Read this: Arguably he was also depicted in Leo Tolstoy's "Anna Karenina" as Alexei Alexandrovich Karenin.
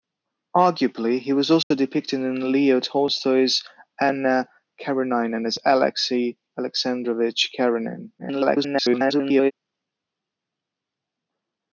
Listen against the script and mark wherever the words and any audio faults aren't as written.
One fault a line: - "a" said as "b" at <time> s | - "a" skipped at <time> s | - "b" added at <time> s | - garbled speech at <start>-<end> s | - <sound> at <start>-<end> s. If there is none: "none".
- dropout at 1.6-1.7 s
- garbled speech at 8.2-9.5 s